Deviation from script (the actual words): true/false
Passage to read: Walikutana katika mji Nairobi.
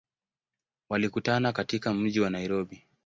true